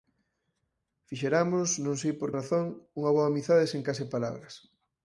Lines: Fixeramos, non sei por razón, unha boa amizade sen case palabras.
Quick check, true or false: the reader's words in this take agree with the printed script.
true